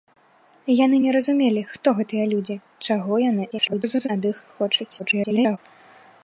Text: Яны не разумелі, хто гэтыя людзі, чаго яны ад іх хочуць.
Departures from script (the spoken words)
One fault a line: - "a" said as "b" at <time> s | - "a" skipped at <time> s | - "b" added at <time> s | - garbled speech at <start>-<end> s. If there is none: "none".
- garbled speech at 3.5-4.1 s
- garbled speech at 5.0-5.6 s